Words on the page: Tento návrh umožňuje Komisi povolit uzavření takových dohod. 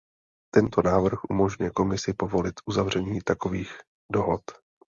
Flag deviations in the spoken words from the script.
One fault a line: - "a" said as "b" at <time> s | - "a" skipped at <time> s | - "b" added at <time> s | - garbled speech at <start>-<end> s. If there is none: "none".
none